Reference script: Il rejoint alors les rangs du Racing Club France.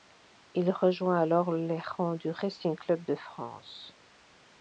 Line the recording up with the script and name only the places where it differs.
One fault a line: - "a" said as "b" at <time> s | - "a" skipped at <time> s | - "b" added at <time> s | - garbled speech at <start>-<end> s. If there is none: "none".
- "de" added at 3.0 s